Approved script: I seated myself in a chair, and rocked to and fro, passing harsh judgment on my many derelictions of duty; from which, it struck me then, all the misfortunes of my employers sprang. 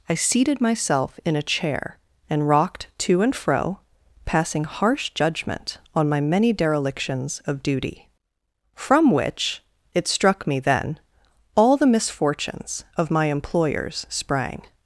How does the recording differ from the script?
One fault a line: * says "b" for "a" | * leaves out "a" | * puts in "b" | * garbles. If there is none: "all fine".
all fine